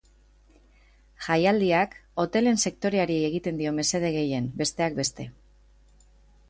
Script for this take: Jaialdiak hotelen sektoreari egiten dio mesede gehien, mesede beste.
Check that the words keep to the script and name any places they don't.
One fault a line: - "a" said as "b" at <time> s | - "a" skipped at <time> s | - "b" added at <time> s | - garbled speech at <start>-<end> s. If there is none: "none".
- "mesede" said as "besteak" at 4.6 s